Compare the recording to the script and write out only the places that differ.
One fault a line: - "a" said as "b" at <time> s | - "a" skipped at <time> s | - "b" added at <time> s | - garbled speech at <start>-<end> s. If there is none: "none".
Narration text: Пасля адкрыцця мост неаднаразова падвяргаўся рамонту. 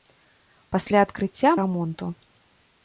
- "мост неаднаразова падвяргаўся" skipped at 1.5 s